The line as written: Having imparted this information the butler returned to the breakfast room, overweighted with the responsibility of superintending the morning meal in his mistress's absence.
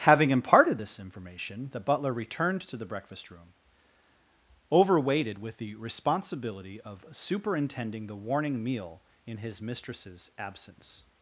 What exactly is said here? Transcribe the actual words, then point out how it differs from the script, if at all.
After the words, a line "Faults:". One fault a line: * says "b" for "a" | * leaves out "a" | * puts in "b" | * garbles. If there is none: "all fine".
Having imparted this information the butler returned to the breakfast room, overweighted with the responsibility of superintending the warning meal in his mistress's absence.
Faults:
* says "warning" for "morning"